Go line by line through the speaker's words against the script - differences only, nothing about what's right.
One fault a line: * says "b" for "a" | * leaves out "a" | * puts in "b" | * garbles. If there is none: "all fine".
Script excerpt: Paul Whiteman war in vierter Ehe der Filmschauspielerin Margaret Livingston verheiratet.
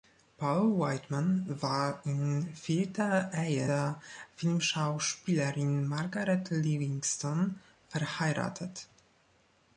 all fine